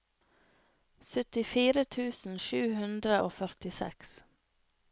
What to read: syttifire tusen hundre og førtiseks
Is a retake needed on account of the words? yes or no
yes